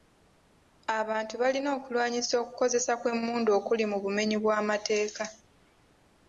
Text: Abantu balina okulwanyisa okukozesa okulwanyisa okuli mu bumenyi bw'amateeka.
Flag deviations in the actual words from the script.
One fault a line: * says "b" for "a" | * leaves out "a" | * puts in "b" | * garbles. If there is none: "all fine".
* says "kw'emmundu" for "okulwanyisa"